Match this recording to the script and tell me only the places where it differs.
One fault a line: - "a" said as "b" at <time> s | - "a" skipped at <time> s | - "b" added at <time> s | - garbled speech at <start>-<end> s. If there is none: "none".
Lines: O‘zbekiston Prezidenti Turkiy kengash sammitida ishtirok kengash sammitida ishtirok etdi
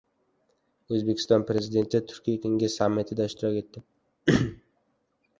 - "kengash sammitida ishtirok" skipped at 3.6 s